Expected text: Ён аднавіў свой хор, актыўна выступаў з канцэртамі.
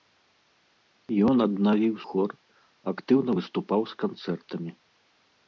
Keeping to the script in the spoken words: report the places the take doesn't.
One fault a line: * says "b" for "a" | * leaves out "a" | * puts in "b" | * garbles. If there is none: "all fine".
* leaves out "свой"